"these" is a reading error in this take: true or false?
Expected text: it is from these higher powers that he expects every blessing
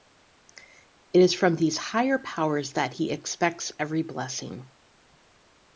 false